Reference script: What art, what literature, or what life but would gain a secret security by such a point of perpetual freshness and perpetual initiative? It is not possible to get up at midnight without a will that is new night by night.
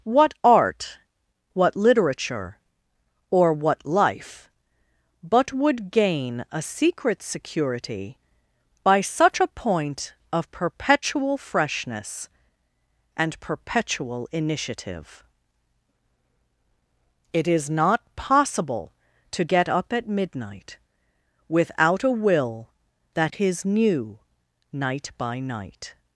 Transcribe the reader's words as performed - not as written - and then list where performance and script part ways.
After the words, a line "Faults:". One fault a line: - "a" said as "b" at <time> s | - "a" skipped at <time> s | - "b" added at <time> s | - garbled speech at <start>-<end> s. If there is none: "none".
What art, what literature, or what life but would gain a secret security by such a point of perpetual freshness and perpetual initiative? It is not possible to get up at midnight without a will that is new night by night.
Faults:
none